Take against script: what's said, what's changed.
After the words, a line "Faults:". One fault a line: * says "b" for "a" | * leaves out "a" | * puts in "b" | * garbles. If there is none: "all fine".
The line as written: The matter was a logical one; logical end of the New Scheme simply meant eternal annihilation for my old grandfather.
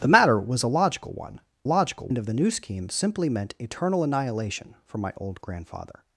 The matter was a logical one; logical end of the New Scheme simply meant eternal annihilation for my old grandfather.
Faults:
all fine